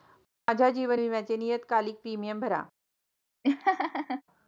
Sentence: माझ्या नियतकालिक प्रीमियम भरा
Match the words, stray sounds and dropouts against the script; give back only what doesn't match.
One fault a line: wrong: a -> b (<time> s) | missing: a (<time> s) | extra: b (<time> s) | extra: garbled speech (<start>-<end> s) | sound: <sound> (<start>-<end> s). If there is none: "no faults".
extra: जीवन विम्याचे (0.7 s)
sound: laugh (3.4-4.2 s)